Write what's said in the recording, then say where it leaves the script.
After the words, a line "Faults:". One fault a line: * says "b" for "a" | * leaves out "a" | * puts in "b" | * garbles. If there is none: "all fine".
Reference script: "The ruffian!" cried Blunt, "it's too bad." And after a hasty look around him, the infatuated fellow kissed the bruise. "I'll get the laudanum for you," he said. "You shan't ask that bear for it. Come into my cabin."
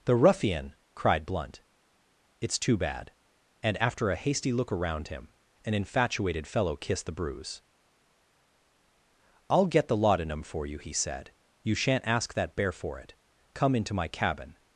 "The ruffian!" cried Blunt, "it's too bad." And after a hasty look around him, an infatuated fellow kissed the bruise. "I'll get the laudanum for you," he said. "You shan't ask that bear for it. Come into my cabin."
Faults:
* says "an" for "the"